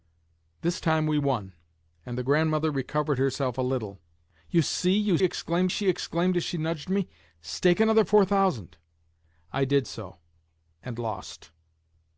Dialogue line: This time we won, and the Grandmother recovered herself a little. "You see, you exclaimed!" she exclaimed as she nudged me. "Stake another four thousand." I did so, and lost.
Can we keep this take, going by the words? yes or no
yes